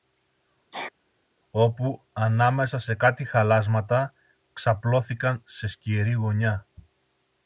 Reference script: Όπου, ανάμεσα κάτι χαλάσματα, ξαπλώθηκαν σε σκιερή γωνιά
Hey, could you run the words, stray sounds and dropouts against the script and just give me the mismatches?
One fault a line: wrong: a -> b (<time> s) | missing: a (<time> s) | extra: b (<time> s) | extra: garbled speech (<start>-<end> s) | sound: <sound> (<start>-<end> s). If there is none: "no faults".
sound: sneeze (0.7-0.9 s)
extra: σε (2.8 s)